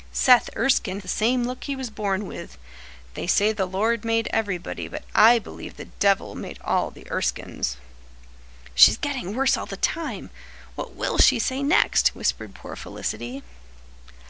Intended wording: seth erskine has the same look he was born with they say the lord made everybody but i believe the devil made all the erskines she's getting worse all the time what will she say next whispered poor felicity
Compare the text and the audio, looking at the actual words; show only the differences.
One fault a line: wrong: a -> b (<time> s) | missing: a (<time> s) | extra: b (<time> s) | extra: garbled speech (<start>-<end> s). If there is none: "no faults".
missing: has (1.0 s)